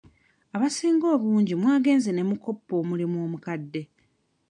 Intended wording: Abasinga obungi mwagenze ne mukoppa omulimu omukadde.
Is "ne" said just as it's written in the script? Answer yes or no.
yes